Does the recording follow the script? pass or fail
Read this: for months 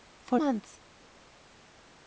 pass